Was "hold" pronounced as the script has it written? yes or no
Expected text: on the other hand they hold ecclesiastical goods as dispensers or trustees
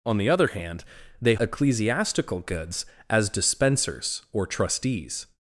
no